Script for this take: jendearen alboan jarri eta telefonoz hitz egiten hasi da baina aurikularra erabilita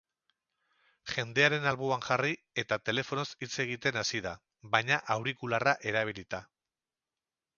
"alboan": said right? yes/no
yes